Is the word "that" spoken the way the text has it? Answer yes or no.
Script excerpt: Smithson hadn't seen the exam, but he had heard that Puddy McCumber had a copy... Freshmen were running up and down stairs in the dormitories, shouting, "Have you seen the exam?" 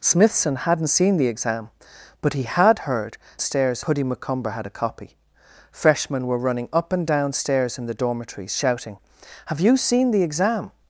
no